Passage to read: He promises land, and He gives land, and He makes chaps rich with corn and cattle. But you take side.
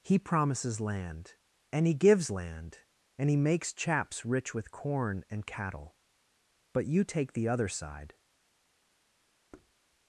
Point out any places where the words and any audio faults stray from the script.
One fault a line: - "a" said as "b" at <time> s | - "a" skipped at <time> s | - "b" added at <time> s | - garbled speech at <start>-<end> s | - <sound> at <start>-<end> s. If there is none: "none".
- "the other" added at 7.3 s
- thud at 9.5-9.7 s